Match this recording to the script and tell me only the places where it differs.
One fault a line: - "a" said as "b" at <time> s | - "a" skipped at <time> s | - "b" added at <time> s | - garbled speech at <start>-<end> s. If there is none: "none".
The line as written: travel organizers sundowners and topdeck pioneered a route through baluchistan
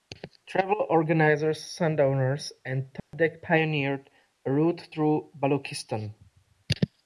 none